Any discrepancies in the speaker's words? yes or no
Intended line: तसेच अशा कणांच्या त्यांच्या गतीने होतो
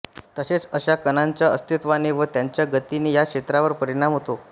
yes